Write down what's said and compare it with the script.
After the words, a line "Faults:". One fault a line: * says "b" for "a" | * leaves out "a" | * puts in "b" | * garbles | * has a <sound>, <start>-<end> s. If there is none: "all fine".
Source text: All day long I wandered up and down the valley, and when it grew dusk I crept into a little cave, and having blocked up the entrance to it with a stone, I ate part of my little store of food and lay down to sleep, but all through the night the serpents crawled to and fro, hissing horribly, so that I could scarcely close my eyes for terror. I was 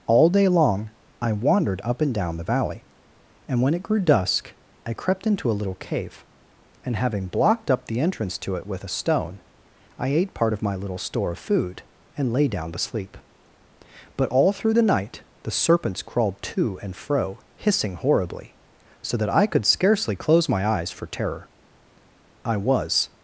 All day long I wandered up and down the valley, and when it grew dusk I crept into a little cave, and having blocked up the entrance to it with a stone, I ate part of my little store of food and lay down to sleep, but all through the night the serpents crawled to and fro, hissing horribly, so that I could scarcely close my eyes for terror. I was
Faults:
all fine